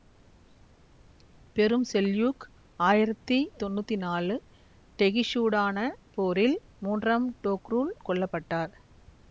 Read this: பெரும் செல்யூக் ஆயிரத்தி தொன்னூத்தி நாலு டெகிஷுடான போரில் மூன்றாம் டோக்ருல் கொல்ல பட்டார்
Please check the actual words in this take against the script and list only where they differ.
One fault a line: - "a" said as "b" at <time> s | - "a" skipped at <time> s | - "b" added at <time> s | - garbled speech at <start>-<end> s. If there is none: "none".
none